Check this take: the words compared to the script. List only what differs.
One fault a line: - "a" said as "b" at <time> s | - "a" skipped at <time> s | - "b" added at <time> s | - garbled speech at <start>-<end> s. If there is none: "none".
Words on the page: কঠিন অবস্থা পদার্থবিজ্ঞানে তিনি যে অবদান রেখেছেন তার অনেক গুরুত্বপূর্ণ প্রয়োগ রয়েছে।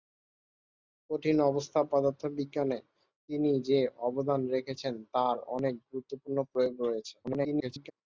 - garbled speech at 7.2-7.9 s